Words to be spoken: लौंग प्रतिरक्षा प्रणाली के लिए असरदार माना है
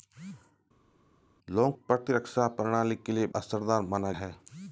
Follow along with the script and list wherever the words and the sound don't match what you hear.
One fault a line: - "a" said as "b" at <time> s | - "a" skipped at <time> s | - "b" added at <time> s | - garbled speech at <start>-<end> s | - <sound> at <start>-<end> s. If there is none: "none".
none